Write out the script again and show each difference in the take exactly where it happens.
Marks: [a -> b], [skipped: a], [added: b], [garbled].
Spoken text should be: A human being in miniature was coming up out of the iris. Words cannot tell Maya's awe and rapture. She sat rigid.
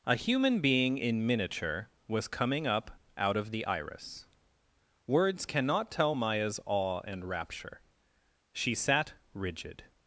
A human being in miniature was coming up out of the iris. Words cannot tell Maya's awe and rapture. She sat rigid.